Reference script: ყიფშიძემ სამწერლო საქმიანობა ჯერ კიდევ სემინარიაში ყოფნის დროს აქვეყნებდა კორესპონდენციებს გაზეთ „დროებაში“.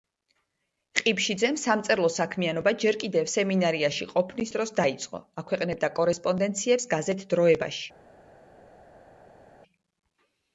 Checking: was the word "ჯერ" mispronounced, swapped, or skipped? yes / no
no